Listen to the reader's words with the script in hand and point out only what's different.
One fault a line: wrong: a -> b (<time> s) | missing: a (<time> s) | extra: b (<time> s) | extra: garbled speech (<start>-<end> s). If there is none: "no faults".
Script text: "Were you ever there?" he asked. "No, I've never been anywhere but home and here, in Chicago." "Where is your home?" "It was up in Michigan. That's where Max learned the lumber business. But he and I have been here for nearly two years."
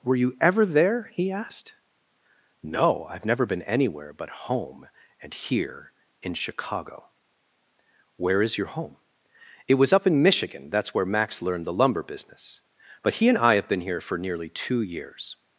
no faults